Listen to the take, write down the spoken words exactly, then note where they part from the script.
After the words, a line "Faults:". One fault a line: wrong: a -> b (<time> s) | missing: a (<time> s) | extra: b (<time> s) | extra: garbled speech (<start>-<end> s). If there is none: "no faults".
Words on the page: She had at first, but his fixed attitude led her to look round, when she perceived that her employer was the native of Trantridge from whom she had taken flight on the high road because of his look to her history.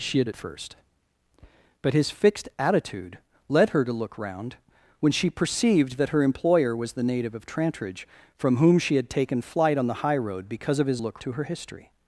She had at first, but his fixed attitude led her to look round, when she perceived that her employer was the native of Trantridge from whom she had taken flight on the high road because of his look to her history.
Faults:
no faults